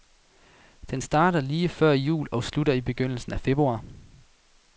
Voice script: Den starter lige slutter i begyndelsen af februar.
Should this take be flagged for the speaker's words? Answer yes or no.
yes